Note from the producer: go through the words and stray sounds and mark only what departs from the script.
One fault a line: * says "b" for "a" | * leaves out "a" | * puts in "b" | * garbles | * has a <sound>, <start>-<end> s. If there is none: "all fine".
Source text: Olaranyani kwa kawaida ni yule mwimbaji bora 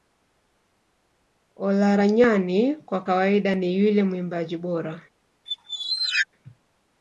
* has a squeak, 5.5-6.3 s